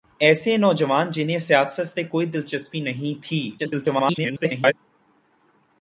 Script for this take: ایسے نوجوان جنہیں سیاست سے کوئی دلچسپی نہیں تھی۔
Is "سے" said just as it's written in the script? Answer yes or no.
yes